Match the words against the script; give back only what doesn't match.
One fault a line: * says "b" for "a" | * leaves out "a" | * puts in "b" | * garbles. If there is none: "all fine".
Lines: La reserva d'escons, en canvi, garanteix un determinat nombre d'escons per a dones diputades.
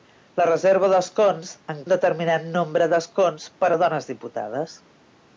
* leaves out "canvi garanteix"